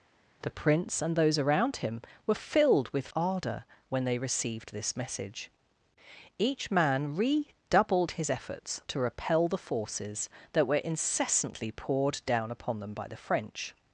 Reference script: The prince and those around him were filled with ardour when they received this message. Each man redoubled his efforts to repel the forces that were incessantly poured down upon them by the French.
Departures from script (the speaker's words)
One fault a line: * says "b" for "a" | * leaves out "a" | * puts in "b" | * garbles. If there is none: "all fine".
all fine